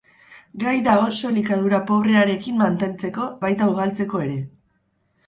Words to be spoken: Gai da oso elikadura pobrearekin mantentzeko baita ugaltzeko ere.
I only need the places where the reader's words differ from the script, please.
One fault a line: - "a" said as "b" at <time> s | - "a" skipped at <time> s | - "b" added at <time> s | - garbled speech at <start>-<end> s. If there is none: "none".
none